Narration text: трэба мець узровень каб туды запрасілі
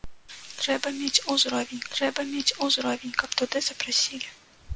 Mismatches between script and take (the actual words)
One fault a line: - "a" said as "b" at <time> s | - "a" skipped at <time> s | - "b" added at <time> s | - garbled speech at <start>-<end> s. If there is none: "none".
- "трэба мець узровень" added at 1.9 s